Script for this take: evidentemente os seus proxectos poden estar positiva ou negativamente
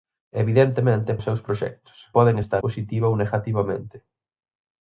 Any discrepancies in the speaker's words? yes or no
no